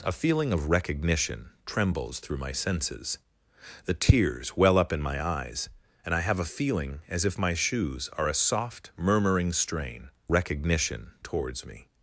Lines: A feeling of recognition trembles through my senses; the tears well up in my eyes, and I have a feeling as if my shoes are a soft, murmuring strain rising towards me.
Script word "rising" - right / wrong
wrong